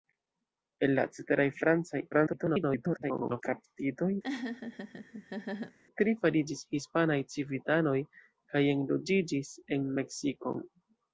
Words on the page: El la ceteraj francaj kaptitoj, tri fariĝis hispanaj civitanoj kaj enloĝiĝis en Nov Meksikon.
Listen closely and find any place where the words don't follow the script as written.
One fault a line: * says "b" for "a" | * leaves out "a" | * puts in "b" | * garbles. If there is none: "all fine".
* garbles
* leaves out "Nov"